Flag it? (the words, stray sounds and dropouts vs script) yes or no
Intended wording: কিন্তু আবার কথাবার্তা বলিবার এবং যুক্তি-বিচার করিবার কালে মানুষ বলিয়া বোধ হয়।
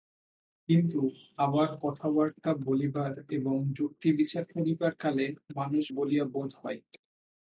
no